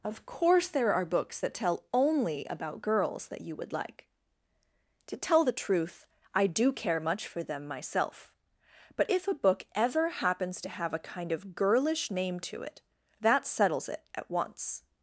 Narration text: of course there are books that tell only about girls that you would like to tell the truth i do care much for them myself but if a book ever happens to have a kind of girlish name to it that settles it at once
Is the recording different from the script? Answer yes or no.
no